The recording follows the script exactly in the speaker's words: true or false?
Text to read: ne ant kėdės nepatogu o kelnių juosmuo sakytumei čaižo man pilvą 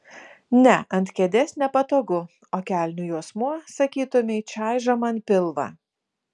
true